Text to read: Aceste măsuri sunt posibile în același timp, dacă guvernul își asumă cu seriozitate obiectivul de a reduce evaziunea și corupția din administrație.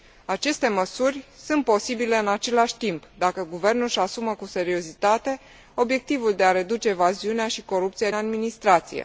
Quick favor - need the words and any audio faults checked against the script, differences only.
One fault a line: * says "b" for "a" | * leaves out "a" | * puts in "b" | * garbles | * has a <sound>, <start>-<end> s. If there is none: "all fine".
* leaves out "din"